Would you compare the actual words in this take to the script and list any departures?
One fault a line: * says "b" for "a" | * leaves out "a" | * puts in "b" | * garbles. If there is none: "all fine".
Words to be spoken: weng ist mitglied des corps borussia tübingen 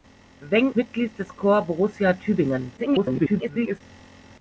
* leaves out "ist"
* garbles